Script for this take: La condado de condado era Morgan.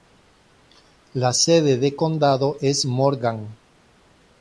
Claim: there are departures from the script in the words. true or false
true